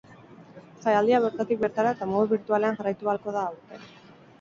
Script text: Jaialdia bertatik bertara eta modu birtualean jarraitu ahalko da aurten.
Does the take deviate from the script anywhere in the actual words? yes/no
no